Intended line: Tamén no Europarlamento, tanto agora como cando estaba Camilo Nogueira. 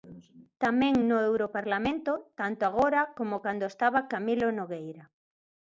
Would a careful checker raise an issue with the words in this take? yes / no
no